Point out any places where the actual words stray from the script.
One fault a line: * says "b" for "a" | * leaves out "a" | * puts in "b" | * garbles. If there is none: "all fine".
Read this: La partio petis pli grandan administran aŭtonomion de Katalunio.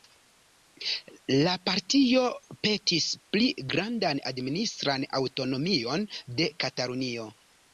all fine